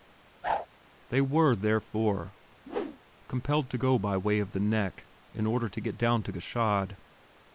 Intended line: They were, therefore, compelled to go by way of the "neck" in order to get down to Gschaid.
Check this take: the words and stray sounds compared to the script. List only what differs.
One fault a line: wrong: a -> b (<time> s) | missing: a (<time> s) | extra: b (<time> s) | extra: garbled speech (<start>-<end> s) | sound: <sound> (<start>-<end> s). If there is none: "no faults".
sound: whoosh (0.4-0.7 s)
sound: whoosh (2.6-3.0 s)